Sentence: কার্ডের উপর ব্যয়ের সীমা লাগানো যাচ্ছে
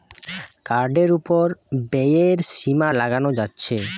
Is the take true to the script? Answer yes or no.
yes